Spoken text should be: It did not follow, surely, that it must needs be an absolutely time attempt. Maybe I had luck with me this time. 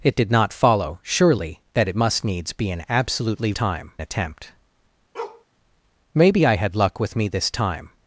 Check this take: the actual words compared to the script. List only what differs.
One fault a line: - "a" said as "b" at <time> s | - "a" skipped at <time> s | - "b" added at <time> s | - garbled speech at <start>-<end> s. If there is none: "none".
none